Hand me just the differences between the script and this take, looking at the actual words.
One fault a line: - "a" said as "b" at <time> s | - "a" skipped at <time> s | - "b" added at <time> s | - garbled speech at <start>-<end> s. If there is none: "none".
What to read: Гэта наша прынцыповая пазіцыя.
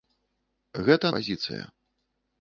- "наша прынцыповая" skipped at 1.1 s